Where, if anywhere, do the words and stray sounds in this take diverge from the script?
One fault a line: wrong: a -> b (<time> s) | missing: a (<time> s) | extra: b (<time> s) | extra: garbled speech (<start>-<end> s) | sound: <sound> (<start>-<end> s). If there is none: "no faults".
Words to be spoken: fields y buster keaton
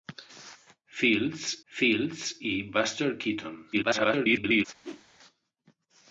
extra: fields (1.7 s)
extra: garbled speech (3.7-4.7 s)
sound: whoosh (4.8-5.0 s)